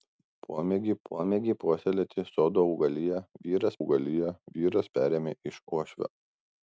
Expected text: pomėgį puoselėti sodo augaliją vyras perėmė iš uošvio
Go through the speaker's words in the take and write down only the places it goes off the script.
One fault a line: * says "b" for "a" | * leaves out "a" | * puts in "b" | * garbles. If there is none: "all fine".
* puts in "pomėgį"
* puts in "augaliją vyras"